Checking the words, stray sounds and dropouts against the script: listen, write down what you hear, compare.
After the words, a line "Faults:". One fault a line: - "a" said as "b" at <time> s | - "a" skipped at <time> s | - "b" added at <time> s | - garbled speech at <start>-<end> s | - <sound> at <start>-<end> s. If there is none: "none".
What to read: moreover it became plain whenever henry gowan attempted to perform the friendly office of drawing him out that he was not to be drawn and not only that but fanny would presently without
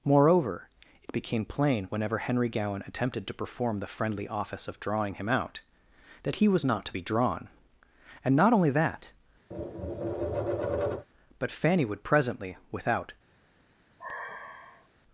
moreover it became plain whenever henry gowan attempted to perform the friendly office of drawing him out that he was not to be drawn and not only that but fanny would presently without
Faults:
- tap at 9.5-11.1 s
- sigh at 14.0-14.9 s